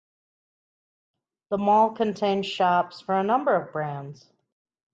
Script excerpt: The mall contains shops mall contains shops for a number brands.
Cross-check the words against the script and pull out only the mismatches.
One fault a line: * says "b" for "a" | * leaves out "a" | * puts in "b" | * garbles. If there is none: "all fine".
* leaves out "mall contains shops"
* puts in "of"